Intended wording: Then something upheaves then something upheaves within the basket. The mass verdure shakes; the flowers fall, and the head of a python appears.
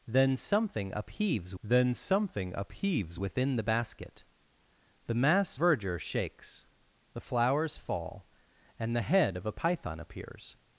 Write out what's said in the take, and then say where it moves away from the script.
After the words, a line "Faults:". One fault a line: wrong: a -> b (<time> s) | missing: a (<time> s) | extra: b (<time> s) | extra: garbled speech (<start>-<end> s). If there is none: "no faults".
Then something upheaves then something upheaves within the basket. The mass verdure shakes; the flowers fall, and the head of a python appears.
Faults:
no faults